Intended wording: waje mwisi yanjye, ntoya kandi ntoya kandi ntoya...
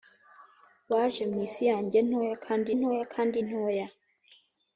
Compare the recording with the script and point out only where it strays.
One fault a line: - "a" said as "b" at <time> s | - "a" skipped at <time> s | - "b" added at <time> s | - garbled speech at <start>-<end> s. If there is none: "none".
none